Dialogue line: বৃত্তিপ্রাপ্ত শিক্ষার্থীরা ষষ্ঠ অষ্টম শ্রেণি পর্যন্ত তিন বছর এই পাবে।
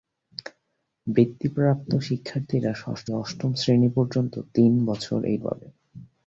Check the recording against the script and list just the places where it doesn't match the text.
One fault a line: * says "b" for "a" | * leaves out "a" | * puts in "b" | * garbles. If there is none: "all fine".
all fine